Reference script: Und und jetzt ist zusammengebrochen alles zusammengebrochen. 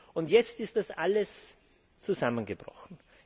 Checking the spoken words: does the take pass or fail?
fail